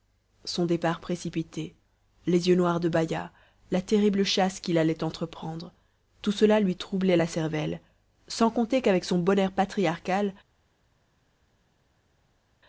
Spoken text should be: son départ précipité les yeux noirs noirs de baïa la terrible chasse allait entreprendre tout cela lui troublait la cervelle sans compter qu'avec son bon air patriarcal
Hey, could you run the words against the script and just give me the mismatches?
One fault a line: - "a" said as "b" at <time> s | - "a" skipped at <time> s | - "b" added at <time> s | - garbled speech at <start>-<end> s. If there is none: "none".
- "noirs" skipped at 2.8 s
- "qu'il" added at 4.6 s